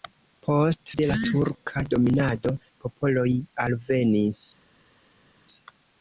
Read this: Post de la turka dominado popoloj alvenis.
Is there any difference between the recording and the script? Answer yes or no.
no